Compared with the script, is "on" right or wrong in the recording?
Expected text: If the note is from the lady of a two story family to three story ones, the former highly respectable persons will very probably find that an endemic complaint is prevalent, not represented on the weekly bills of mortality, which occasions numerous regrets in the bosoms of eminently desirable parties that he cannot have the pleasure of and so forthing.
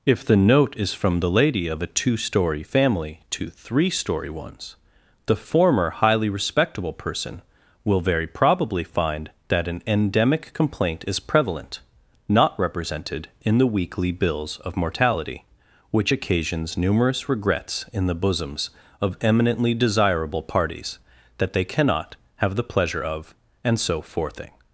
wrong